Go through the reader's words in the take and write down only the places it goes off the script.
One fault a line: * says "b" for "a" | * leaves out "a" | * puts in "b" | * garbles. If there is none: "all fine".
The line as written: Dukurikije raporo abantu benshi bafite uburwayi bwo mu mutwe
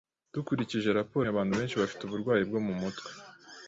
all fine